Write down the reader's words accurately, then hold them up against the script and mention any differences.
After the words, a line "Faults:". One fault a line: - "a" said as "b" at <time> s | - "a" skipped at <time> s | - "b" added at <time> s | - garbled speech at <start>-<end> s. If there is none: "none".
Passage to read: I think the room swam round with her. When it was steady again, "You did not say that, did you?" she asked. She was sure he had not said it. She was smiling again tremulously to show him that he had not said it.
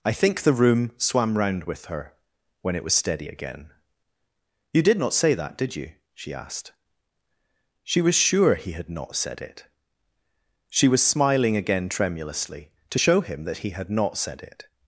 I think the room swam round with her. When it was steady again, "You did not say that, did you?" she asked. She was sure he had not said it. She was smiling again tremulously to show him that he had not said it.
Faults:
none